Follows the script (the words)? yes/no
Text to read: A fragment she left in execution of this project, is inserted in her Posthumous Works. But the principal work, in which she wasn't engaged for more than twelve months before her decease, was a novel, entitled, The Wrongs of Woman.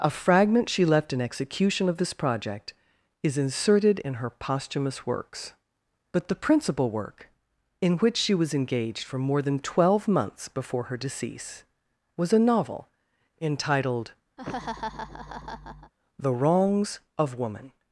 no